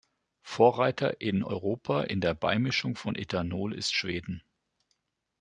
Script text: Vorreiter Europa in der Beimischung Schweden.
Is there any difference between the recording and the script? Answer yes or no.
yes